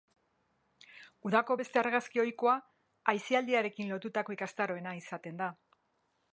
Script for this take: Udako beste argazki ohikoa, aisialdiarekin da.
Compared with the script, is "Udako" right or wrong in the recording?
right